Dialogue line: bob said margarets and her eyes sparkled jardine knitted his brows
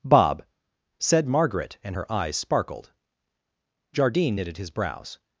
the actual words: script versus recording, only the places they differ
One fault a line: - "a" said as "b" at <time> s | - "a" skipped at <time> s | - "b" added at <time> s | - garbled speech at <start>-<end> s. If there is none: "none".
- "margarets" said as "margaret" at 1.3 s